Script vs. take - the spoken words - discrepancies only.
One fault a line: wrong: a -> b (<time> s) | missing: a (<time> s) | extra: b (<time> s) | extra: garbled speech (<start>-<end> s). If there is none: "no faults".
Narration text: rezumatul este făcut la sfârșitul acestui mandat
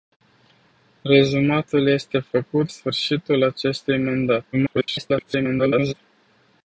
missing: la (2.7 s)
extra: garbled speech (4.5-5.9 s)